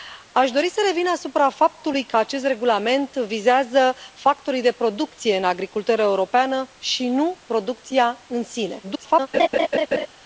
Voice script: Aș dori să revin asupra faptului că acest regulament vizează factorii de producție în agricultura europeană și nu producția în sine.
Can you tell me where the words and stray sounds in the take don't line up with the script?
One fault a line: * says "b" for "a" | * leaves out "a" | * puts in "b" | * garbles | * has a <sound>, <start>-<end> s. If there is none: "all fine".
* garbles
* has a laugh, 9.3-10.1 s